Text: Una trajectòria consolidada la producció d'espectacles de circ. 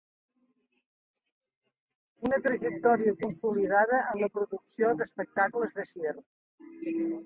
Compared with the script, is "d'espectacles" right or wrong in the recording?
right